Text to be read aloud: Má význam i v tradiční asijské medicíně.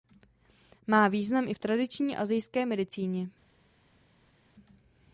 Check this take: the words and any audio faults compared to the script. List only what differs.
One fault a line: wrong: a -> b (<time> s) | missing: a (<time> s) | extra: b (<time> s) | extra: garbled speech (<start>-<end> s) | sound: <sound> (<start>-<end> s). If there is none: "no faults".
no faults